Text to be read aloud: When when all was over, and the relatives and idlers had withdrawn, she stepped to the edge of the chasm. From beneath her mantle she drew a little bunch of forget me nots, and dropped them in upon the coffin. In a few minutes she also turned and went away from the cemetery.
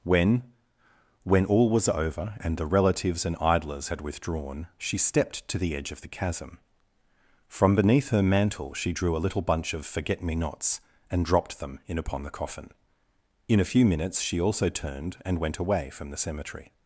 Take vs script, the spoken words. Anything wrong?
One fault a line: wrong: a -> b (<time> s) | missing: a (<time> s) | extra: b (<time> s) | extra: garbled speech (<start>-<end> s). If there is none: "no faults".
no faults